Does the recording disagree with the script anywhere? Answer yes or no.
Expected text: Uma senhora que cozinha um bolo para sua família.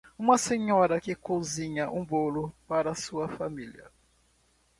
no